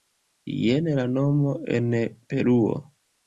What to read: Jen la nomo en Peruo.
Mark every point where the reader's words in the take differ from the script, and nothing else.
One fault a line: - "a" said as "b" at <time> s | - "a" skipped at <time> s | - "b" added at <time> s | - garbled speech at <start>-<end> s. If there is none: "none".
none